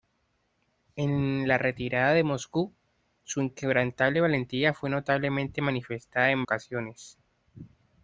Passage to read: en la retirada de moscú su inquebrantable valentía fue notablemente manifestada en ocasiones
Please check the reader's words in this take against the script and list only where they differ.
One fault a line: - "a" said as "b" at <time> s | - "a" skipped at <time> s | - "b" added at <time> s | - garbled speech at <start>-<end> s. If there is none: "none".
none